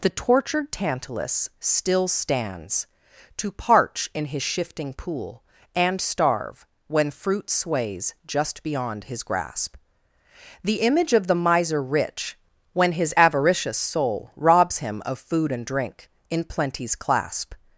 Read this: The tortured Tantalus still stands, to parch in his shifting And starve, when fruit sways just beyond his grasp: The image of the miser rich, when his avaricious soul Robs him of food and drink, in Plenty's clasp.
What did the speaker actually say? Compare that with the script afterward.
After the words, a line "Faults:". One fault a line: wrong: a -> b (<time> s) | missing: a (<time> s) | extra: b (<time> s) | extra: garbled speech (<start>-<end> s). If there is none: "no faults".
The tortured Tantalus still stands, to parch in his shifting pool, And starve, when fruit sways just beyond his grasp: The image of the miser rich, when his avaricious soul Robs him of food and drink, in Plenty's clasp.
Faults:
extra: pool (4.9 s)